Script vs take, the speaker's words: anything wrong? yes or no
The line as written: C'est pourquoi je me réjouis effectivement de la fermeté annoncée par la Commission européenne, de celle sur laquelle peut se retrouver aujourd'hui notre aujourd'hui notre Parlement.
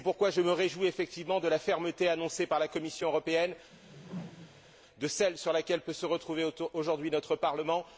yes